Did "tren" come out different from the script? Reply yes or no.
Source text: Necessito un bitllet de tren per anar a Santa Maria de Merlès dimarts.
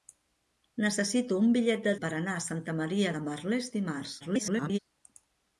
yes